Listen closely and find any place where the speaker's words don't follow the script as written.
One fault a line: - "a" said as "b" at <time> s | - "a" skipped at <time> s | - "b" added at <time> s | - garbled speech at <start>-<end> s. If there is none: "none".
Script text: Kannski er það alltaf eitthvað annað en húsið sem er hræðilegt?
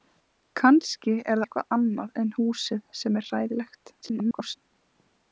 - "það alltaf" skipped at 1.4 s
- garbled speech at 4.0-4.6 s